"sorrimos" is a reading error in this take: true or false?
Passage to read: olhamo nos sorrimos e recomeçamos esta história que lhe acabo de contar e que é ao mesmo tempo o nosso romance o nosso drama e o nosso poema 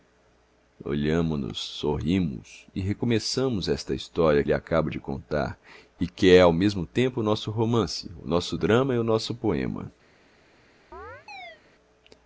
false